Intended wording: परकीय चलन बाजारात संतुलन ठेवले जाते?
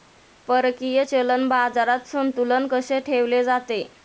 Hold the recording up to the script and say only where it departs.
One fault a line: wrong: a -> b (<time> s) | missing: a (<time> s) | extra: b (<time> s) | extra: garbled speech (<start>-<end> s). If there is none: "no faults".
extra: कसे (2.7 s)